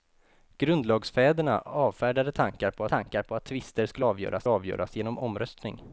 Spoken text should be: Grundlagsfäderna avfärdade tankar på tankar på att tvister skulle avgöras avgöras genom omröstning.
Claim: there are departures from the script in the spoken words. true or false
false